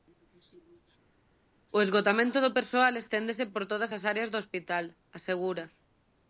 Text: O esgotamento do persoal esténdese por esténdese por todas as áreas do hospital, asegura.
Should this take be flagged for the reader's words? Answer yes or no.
yes